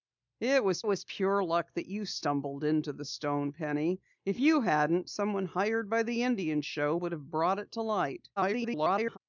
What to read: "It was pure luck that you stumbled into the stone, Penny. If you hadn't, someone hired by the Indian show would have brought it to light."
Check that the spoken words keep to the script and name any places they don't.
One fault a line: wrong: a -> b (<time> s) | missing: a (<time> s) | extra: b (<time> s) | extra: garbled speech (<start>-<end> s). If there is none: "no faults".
extra: was (0.9 s)
extra: garbled speech (8.4-9.2 s)